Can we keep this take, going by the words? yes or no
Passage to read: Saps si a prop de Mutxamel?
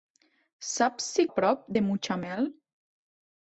yes